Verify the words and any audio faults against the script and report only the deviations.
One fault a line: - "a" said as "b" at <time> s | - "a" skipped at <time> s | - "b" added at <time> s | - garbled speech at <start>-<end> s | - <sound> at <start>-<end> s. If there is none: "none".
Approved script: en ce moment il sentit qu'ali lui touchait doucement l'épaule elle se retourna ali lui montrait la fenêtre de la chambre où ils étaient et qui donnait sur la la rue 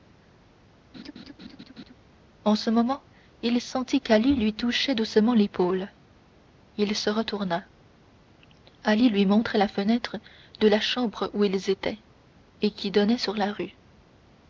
- laugh at 0.9-1.9 s
- "elle" said as "il" at 6.8 s
- "la" skipped at 13.5 s